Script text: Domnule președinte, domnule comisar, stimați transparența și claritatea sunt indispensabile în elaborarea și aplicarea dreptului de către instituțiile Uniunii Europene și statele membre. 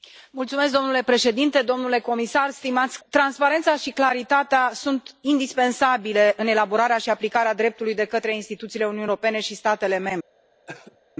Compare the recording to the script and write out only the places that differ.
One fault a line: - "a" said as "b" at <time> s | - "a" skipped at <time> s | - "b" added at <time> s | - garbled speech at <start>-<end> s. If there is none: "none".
none